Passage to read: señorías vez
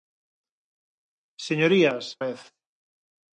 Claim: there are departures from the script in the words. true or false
false